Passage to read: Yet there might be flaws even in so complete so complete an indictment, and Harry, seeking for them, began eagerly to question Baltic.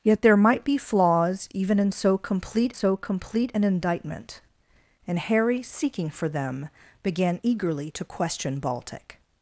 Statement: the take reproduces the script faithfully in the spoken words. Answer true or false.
true